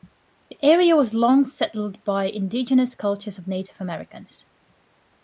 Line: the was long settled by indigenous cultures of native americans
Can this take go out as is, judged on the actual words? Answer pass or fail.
fail